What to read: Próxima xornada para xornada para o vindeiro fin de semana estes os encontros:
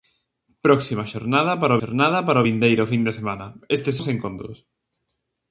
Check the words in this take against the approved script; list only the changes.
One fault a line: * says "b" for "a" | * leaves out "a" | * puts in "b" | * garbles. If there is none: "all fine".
all fine